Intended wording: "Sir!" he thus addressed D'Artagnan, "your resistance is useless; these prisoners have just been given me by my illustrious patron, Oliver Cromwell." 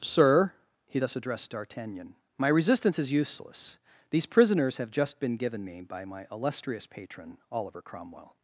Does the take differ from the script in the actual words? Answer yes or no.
yes